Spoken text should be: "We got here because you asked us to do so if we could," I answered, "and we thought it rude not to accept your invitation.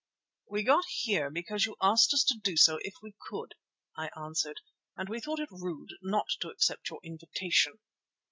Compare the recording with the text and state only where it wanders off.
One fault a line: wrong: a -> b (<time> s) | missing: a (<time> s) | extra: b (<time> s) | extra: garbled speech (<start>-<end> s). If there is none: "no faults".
no faults